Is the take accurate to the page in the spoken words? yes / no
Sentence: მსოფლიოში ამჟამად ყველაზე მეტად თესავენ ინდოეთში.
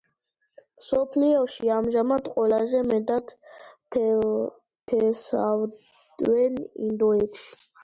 yes